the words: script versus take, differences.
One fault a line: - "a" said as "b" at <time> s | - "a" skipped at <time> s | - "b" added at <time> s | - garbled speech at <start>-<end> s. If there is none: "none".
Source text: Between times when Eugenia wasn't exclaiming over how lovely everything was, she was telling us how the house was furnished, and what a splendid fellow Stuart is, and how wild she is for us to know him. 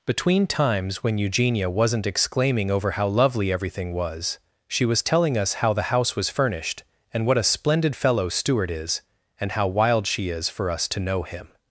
none